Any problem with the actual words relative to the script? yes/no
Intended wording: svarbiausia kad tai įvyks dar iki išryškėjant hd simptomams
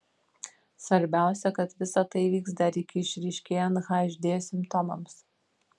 yes